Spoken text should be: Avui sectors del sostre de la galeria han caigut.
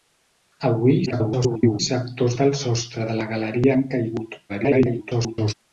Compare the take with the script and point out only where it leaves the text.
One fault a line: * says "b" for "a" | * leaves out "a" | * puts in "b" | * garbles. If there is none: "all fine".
* garbles
* garbles